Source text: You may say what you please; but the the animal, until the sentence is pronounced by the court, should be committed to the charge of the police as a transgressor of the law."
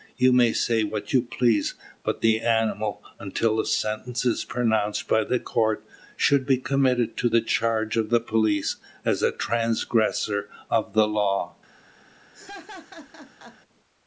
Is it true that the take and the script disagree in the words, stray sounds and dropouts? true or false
true